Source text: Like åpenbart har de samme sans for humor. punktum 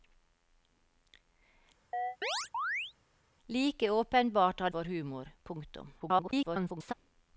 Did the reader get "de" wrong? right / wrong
wrong